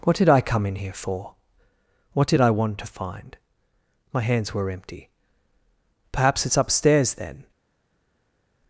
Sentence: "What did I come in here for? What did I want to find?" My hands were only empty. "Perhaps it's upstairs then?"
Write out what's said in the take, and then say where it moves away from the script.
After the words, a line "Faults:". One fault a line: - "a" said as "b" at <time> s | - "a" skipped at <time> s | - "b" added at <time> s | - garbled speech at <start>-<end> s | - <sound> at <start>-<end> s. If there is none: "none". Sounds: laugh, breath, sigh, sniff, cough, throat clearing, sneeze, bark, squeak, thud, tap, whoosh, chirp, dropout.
"What did I come in here for? What did I want to find?" My hands were empty. "Perhaps it's upstairs then?"
Faults:
- "only" skipped at 4.7 s